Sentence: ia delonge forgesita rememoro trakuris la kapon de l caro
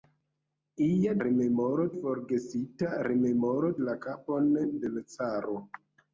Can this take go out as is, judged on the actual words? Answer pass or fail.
fail